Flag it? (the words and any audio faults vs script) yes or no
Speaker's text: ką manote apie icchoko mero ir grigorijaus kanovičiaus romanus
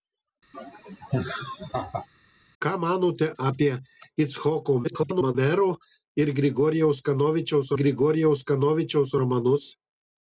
yes